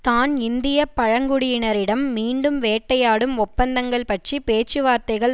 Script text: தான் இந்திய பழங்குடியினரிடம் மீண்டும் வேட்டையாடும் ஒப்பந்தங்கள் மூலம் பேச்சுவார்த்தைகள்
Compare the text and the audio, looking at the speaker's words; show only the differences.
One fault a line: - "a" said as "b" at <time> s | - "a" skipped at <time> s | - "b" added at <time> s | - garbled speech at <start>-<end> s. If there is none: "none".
- "மூலம்" said as "பற்றி" at 4.0 s